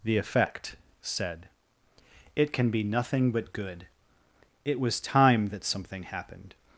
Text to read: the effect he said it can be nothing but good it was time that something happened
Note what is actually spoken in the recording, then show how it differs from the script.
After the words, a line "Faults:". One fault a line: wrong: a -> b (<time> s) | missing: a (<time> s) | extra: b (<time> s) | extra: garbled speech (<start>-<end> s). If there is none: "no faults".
the effect said it can be nothing but good it was time that something happened
Faults:
missing: he (0.8 s)